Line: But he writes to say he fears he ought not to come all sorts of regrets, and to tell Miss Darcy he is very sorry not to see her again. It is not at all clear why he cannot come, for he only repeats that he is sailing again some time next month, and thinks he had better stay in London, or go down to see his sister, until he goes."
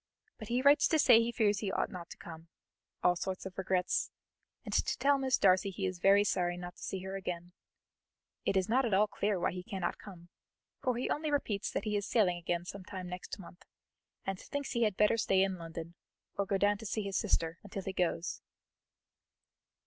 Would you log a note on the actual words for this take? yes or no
no